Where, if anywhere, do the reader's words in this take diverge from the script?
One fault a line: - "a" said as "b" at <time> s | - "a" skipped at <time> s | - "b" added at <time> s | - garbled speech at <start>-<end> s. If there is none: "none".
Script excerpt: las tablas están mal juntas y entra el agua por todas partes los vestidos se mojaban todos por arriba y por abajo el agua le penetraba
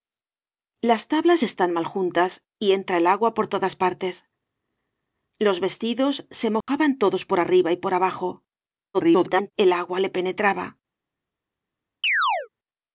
- garbled speech at 8.9-9.5 s